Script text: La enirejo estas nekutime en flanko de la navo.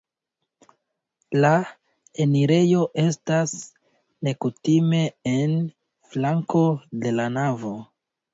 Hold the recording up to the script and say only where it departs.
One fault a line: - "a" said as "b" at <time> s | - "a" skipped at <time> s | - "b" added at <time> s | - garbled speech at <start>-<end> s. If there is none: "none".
none